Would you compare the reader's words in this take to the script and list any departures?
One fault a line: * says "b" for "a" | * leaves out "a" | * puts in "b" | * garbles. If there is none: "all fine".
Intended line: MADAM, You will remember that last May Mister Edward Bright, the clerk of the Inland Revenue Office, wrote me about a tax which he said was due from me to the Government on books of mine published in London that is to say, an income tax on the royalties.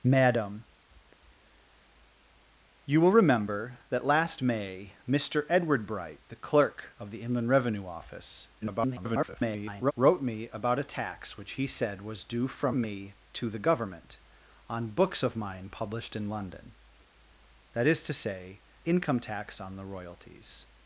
* garbles
* leaves out "an"